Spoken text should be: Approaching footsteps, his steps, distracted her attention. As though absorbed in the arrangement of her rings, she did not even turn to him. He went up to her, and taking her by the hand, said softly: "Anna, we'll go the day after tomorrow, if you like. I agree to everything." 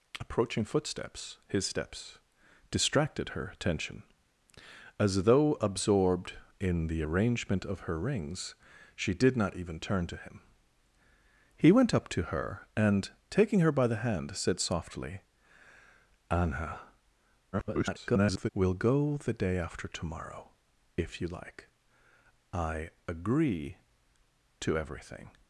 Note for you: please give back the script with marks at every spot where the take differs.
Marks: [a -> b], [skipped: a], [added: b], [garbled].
Approaching footsteps, his steps, distracted her attention. As though absorbed in the arrangement of her rings, she did not even turn to him. He went up to her, and taking her by the hand, said softly: "Anna, [garbled] we'll go the day after tomorrow, if you like. I agree to everything."